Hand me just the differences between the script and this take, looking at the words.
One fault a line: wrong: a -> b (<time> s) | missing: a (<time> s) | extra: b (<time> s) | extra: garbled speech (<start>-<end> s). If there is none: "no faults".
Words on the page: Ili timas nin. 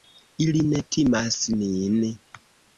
extra: ne (0.7 s)